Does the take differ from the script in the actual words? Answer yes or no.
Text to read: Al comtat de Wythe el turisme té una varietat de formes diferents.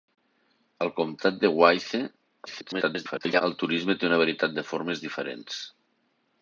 yes